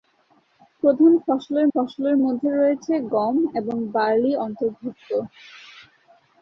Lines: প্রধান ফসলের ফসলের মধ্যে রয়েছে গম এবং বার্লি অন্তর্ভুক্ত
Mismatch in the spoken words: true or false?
false